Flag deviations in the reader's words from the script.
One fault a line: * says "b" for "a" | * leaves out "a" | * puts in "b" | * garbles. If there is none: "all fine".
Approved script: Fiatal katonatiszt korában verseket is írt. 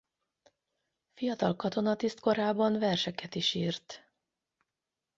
all fine